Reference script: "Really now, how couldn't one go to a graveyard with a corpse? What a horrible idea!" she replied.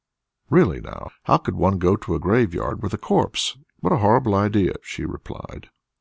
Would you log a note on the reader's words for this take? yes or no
yes